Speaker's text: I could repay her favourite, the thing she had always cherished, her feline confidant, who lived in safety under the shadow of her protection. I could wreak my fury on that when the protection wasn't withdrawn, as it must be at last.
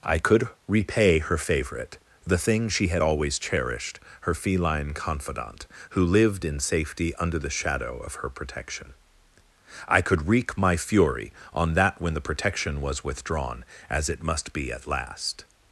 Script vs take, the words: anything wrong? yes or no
yes